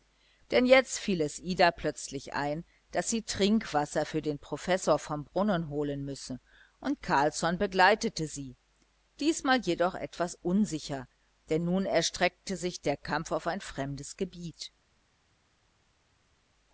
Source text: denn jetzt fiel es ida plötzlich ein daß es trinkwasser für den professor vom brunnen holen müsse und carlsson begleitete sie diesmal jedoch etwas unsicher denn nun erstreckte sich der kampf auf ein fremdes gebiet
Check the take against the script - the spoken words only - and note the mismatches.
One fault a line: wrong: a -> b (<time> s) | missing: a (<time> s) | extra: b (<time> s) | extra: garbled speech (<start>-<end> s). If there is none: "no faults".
wrong: es -> sie (3.1 s)